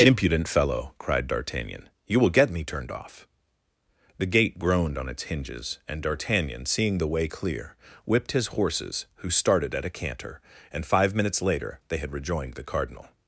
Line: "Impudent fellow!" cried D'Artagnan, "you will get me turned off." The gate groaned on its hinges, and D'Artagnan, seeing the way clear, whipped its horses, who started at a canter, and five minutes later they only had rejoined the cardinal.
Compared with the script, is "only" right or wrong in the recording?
wrong